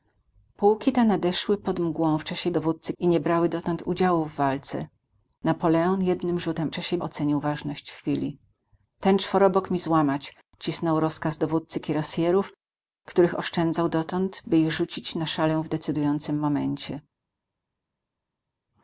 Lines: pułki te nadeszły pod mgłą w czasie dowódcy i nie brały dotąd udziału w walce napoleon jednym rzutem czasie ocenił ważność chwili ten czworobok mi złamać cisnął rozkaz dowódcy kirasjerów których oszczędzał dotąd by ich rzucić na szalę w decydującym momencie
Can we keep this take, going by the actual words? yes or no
yes